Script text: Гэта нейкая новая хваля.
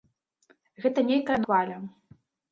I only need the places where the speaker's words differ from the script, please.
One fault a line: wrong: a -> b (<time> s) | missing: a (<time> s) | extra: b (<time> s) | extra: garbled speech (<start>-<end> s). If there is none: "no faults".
missing: новая (1.4 s)